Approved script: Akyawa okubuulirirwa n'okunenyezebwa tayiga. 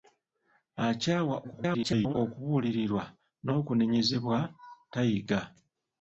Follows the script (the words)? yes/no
no